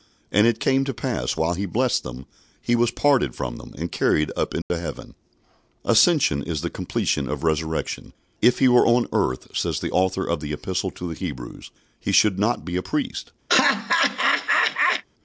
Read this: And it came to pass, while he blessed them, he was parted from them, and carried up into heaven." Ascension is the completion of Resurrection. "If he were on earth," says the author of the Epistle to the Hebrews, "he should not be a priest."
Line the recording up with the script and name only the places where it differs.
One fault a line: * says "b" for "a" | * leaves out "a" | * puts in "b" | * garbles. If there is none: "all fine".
all fine